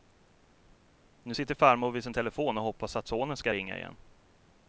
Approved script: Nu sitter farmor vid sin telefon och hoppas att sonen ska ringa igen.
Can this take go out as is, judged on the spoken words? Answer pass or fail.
pass